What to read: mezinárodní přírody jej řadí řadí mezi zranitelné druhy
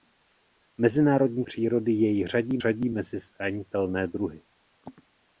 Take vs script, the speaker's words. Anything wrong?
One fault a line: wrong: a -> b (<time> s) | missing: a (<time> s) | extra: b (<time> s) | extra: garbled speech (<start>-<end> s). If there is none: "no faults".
no faults